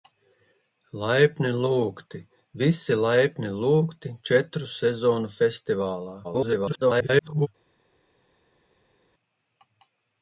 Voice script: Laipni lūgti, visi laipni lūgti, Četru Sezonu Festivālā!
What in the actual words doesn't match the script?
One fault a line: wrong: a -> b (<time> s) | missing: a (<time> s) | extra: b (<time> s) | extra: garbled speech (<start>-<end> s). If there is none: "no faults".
extra: garbled speech (6.2-7.5 s)